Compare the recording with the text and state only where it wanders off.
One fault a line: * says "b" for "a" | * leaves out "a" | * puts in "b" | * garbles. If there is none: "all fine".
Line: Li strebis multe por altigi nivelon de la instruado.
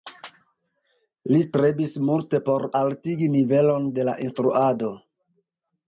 all fine